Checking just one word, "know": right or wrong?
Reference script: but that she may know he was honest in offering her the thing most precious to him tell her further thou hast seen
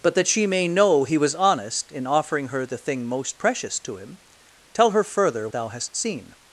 right